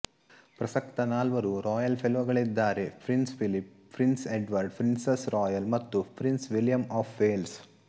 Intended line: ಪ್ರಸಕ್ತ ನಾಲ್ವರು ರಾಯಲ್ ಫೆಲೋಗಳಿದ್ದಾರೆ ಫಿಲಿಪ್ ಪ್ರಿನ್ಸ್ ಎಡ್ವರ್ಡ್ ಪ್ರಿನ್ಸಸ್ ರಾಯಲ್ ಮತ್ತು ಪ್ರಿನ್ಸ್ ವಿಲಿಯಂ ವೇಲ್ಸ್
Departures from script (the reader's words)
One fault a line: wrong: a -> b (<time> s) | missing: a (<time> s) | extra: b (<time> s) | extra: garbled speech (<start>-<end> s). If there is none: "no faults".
extra: ಪ್ರಿನ್ಸ್ (3.0 s)
extra: ಆಫ್ (6.9 s)